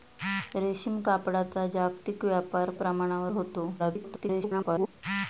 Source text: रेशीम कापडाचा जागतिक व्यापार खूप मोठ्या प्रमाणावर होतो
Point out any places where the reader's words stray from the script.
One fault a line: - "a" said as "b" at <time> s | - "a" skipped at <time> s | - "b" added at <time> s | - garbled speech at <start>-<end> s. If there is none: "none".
- "खूप मोठ्या" skipped at 2.7 s
- garbled speech at 3.8-4.9 s